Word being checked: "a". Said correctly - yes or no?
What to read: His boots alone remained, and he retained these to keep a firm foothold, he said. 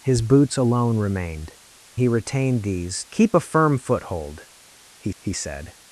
yes